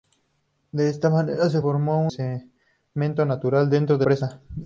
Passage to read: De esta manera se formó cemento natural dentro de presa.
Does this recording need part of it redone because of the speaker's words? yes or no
no